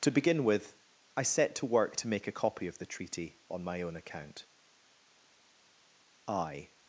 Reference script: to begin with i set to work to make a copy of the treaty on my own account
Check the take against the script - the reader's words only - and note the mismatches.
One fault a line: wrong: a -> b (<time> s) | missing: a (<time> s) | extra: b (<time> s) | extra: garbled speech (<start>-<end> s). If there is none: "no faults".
extra: i (6.3 s)